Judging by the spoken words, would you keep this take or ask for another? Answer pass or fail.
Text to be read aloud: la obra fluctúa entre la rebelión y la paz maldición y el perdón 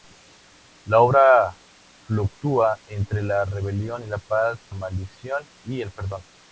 pass